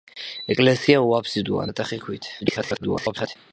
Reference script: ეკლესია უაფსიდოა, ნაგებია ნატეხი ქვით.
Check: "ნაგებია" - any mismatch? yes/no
yes